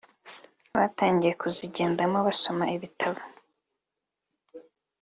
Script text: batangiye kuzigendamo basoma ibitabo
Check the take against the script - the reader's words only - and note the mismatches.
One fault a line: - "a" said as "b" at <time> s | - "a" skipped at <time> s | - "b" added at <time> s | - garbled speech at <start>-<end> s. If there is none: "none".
none